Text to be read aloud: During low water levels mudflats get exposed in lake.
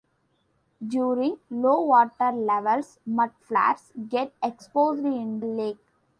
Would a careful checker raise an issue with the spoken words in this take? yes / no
no